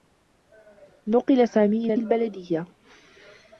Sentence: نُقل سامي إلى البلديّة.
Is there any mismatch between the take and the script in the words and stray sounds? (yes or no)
no